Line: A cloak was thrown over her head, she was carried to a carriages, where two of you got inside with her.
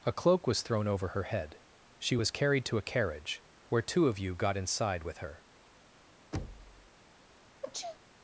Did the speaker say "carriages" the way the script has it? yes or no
no